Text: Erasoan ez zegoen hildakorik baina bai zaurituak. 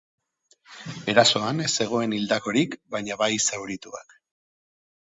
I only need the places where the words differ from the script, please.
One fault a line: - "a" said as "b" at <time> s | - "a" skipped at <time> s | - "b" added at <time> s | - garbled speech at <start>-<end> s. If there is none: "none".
none